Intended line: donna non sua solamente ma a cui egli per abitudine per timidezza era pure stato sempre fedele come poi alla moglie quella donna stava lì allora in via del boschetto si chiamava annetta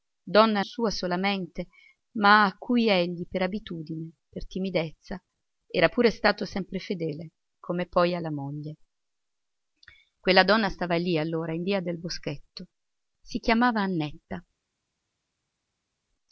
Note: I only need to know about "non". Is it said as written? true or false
false